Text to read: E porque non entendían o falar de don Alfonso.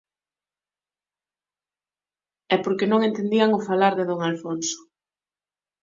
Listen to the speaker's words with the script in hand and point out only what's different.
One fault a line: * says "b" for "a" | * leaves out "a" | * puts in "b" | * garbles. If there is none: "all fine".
all fine